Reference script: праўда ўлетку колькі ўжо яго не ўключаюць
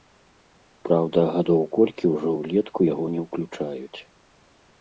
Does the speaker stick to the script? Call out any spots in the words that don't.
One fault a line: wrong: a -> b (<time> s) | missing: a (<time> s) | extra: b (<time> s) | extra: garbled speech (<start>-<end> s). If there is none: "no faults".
wrong: ўлетку -> гадоў (1.4 s)
extra: ўлетку (2.4 s)